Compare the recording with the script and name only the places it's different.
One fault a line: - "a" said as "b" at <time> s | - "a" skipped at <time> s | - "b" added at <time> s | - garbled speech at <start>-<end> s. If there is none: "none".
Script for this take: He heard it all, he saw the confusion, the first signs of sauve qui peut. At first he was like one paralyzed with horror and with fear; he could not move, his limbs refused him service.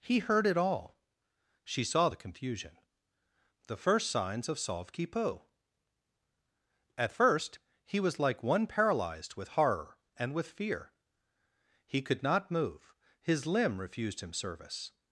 - "he" said as "she" at 1.6 s
- "limbs" said as "limb" at 13.5 s